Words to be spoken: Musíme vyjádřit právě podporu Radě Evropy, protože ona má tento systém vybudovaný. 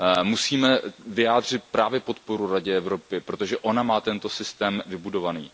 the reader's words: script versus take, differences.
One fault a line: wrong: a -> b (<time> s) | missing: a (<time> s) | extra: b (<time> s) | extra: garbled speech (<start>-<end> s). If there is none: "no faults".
no faults